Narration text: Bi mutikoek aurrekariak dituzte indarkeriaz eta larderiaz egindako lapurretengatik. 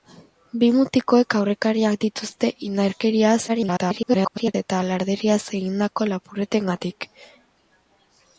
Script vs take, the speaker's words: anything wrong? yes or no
yes